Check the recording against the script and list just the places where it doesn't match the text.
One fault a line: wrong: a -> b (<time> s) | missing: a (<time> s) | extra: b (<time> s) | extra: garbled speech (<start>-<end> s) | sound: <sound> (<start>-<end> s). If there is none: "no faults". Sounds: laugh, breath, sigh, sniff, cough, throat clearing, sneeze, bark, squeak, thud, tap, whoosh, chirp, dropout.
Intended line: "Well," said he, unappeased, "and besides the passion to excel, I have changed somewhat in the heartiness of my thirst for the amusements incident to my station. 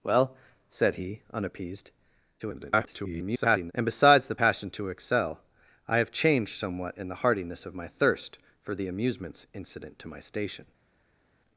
extra: garbled speech (2.4-3.7 s)